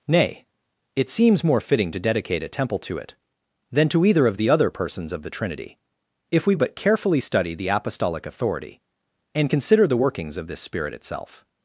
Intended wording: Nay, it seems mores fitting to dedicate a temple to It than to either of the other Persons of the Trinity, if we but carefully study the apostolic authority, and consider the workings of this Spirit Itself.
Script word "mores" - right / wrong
wrong